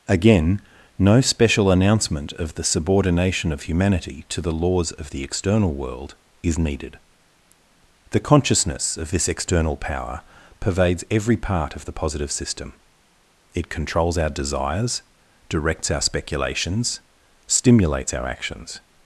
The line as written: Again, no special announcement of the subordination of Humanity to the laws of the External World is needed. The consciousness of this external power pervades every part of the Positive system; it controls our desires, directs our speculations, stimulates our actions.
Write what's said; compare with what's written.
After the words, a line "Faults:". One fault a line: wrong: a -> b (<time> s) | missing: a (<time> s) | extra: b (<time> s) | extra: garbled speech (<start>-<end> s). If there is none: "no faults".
Again, no special announcement of the subordination of Humanity to the laws of the External World is needed. The consciousness of this external power pervades every part of the Positive system; it controls our desires, directs our speculations, stimulates our actions.
Faults:
no faults